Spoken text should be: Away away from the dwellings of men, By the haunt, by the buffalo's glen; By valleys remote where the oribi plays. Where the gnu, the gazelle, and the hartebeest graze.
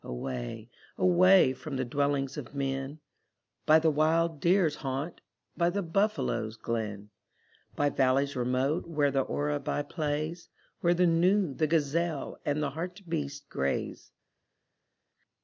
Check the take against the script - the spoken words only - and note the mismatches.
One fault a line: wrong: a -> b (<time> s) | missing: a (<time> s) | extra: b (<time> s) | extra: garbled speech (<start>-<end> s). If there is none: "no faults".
extra: wild deer's (3.9 s)